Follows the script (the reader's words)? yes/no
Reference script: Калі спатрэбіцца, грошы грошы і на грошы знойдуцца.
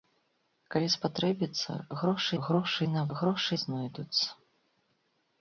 yes